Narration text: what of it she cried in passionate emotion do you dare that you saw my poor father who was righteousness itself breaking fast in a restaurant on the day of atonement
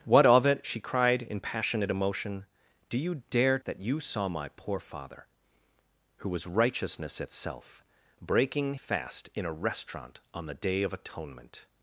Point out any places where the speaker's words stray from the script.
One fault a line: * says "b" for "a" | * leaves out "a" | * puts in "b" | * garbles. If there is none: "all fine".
all fine